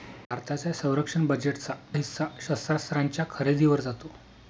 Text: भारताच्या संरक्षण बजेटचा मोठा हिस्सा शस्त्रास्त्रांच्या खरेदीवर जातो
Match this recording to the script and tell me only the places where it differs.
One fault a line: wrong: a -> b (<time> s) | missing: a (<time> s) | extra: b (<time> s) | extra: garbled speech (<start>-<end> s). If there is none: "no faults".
missing: मोठा (1.7 s)